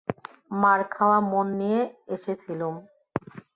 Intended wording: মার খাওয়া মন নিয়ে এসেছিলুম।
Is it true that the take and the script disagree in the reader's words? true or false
false